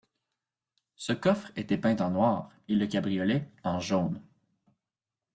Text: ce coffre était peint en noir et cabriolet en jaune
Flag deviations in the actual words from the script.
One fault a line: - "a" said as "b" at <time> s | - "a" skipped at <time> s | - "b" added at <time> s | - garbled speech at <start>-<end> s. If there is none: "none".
- "le" added at 2.7 s